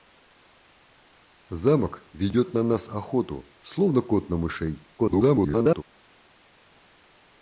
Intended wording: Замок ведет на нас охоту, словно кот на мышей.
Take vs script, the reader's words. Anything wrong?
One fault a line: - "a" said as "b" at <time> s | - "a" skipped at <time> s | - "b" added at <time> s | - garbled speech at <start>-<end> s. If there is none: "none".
- garbled speech at 5.0-5.8 s